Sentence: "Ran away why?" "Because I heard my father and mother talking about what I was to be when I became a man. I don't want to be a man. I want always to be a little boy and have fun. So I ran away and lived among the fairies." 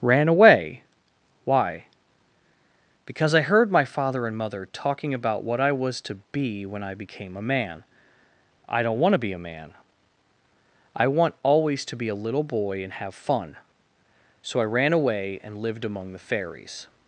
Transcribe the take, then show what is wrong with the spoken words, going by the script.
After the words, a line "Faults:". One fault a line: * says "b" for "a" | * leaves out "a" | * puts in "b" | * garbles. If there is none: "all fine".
"Ran away why?" "Because I heard my father and mother talking about what I was to be when I became a man. I don't want to be a man. I want always to be a little boy and have fun. So I ran away and lived among the fairies."
Faults:
all fine